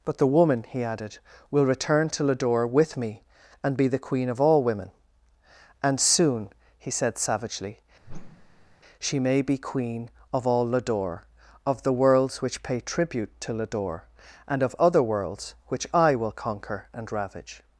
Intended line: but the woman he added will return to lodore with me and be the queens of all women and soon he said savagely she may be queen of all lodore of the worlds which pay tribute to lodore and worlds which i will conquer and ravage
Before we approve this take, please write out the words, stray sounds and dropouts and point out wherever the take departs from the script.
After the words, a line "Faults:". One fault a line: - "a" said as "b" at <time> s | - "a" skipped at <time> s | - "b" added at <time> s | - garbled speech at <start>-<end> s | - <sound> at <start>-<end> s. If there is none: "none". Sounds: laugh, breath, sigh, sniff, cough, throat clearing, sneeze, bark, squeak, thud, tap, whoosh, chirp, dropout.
but the woman he added will return to lodore with me and be the queen of all women and soon he said savagely she may be queen of all lodore of the worlds which pay tribute to lodore and of other worlds which i will conquer and ravage
Faults:
- "queens" said as "queen" at 4.0 s
- whoosh at 8.0-8.8 s
- "of other" added at 14.6 s